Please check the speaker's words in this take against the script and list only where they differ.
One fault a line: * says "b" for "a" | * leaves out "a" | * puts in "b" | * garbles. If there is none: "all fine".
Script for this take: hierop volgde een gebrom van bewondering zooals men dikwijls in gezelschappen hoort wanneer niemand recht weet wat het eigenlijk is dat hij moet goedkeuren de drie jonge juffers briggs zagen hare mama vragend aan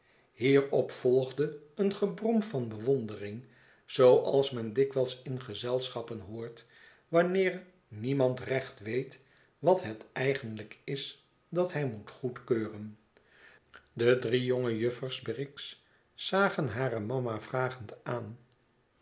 all fine